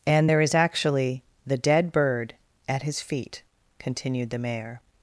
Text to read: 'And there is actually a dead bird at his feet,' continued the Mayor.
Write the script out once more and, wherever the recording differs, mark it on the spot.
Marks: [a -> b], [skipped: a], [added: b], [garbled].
'And there is actually [a -> the] dead bird at his feet,' continued the Mayor.